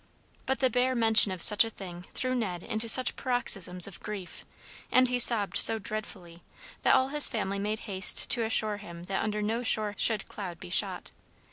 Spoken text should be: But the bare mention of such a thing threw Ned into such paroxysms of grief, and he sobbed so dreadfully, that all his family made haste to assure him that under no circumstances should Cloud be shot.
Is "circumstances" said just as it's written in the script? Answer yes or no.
no